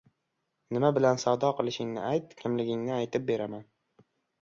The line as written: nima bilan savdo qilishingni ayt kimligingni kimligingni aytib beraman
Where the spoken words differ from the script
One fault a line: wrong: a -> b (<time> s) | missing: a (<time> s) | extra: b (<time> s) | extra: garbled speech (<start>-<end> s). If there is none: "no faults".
missing: kimligingni (3.0 s)